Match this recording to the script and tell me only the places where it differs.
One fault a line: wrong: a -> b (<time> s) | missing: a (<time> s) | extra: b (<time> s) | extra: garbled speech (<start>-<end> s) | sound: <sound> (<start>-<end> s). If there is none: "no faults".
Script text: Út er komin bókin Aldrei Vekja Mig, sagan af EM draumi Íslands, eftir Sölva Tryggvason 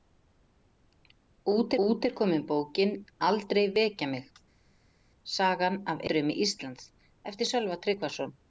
extra: út (1.9 s)
missing: EM (6.0 s)